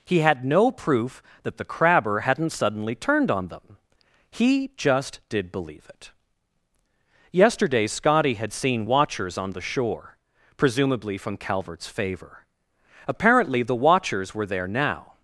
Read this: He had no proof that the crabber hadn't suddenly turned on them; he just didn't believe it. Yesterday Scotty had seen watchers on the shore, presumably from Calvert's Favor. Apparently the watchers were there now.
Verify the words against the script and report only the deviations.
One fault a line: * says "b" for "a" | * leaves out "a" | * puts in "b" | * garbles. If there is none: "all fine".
* says "did" for "didn't"